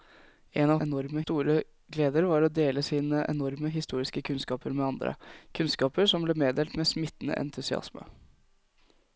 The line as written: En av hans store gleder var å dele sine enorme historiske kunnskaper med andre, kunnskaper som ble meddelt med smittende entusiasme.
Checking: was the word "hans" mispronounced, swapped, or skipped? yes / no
yes